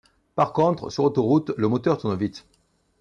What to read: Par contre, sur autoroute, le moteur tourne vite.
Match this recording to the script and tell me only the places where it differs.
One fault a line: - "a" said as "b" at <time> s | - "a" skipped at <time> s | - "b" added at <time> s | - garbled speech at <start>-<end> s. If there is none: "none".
none